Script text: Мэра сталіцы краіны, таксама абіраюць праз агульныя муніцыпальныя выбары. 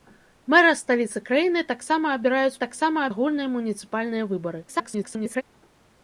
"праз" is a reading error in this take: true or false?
true